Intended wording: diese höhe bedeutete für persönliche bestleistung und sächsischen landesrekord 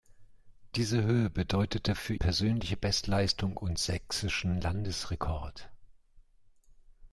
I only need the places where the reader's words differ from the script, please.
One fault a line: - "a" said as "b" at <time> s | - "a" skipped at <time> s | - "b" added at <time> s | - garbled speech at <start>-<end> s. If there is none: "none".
none